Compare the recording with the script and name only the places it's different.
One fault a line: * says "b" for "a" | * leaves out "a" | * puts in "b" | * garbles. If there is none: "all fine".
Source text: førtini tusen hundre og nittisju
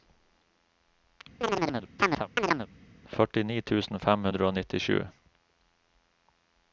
* puts in "fem"